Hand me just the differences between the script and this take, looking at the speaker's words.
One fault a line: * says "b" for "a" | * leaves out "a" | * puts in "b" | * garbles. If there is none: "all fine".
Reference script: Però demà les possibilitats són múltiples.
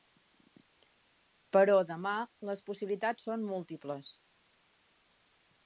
all fine